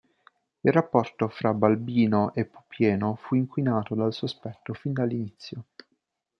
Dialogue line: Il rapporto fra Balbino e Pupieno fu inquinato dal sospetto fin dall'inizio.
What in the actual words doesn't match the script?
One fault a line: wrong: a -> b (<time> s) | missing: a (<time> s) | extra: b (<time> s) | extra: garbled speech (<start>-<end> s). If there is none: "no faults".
no faults